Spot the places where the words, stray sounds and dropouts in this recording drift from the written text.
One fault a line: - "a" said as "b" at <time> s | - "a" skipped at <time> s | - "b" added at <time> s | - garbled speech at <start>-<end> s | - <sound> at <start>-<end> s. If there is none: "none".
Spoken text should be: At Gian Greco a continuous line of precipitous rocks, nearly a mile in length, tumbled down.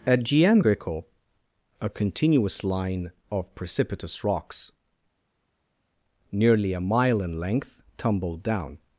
none